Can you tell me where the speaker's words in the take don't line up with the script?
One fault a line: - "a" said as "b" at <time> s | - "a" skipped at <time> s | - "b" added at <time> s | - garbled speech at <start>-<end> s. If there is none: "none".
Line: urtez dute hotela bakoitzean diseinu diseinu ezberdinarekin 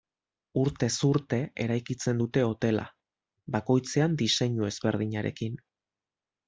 - "urte eraikitzen" added at 1.1 s
- "diseinu" skipped at 4.7 s